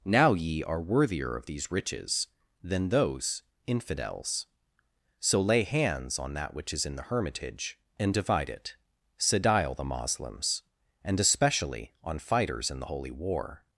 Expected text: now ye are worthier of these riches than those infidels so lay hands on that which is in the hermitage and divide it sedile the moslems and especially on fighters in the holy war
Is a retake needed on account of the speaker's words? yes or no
no